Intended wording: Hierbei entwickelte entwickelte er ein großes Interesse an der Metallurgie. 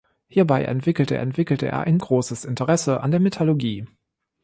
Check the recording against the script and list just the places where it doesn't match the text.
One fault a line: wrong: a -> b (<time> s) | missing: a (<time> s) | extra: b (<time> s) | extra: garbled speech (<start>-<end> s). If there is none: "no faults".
no faults